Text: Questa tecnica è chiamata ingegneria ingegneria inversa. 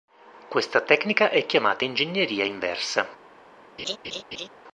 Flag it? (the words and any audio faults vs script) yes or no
yes